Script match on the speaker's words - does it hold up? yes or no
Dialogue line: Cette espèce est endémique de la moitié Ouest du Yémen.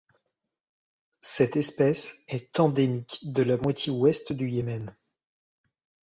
yes